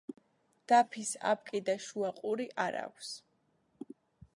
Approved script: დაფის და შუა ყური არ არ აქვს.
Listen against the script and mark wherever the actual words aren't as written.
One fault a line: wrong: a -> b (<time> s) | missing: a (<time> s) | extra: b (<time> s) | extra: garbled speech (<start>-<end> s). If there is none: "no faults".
extra: აპკი (1.3 s)
missing: არ (2.8 s)